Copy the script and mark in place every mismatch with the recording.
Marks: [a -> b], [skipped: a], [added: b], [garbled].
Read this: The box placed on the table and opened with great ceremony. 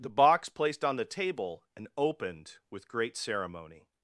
The box placed on the table and opened with great ceremony.